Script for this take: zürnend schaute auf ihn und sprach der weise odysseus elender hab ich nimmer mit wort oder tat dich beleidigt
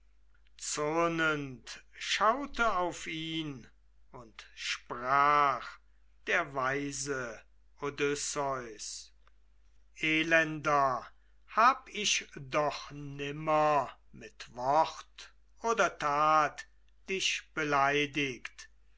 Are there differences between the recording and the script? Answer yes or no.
yes